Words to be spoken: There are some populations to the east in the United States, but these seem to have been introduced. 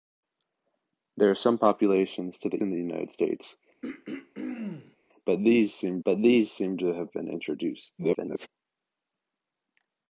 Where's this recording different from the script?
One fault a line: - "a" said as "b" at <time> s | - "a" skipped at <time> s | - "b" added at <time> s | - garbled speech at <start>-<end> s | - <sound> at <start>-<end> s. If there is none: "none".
- "east" skipped at 2.6 s
- throat clearing at 3.8-5.0 s
- "but these seem" added at 6.0 s
- garbled speech at 8.0-8.5 s